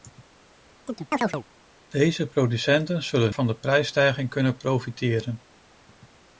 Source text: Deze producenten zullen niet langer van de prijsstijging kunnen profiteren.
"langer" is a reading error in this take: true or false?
true